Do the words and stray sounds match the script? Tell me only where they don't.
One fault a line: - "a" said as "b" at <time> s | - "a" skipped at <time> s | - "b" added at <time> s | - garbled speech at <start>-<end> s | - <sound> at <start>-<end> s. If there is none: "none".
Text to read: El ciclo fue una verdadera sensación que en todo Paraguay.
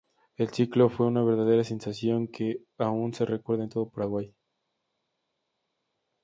- "aún se recuerda" added at 2.8 s